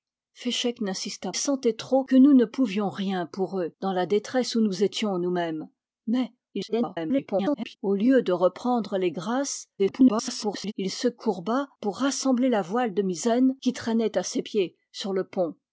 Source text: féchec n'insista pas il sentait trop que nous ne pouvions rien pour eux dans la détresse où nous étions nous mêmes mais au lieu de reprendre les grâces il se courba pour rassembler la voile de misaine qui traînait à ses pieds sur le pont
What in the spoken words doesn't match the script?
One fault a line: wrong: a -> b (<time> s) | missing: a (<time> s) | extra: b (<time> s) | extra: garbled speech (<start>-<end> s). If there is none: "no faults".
missing: pas il (1.3 s)
extra: garbled speech (6.5-7.8 s)
extra: garbled speech (9.8-10.7 s)